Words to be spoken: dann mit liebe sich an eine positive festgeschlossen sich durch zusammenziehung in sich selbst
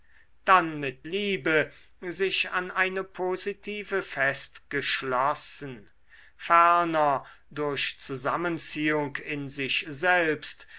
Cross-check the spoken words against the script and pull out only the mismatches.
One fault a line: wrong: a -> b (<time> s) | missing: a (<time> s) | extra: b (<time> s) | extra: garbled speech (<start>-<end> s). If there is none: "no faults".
wrong: sich -> ferner (6.4 s)